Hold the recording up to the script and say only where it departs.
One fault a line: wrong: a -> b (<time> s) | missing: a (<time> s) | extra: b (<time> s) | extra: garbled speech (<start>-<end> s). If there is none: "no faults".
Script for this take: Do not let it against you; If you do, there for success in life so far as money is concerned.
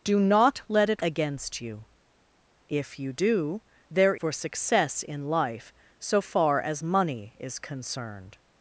no faults